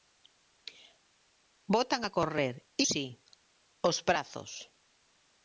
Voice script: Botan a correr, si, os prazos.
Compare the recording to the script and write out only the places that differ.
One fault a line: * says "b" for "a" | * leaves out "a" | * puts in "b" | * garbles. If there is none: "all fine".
all fine